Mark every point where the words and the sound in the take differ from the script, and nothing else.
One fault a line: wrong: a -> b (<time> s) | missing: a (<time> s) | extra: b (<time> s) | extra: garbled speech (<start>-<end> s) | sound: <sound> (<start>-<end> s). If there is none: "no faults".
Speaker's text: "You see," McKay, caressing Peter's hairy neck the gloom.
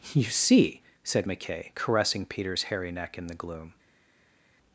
extra: said (1.0 s)
extra: in (3.2 s)